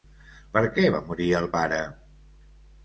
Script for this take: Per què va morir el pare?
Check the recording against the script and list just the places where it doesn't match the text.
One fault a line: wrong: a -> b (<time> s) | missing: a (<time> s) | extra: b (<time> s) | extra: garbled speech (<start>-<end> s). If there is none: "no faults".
no faults